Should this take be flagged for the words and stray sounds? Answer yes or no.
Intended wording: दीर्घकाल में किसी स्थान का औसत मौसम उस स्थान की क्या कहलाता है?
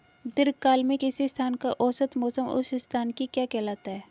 no